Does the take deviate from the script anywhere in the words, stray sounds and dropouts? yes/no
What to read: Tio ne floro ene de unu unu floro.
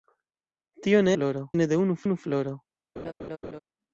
yes